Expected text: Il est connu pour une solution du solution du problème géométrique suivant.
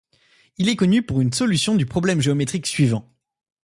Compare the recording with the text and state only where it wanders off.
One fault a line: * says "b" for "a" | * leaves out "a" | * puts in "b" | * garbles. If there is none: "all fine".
* leaves out "solution du"